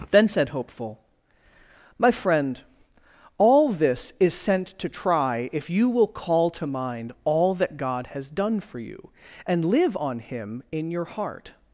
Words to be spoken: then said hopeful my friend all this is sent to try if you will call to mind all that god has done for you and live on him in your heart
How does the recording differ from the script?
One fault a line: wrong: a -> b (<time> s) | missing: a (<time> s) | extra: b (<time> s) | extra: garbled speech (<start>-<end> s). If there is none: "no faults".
no faults